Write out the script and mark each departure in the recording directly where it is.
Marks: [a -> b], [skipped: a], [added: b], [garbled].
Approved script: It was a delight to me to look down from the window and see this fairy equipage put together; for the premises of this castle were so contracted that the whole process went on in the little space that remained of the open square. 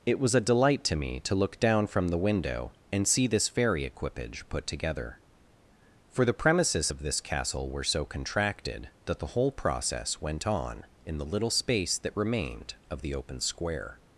It was a delight to me to look down from the window and see this fairy equipage put together; for the premises of this castle were so contracted that the whole process went on in the little space that remained of the open square.